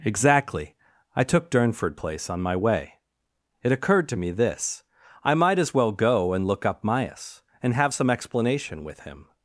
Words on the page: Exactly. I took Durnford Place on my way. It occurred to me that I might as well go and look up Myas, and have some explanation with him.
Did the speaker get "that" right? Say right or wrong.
wrong